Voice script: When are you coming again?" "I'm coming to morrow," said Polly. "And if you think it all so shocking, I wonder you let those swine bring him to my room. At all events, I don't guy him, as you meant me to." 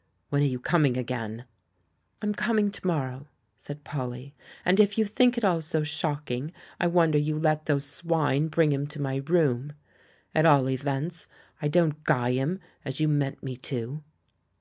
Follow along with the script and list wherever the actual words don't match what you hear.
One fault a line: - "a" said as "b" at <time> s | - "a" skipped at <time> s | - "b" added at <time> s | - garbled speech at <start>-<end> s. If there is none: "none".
none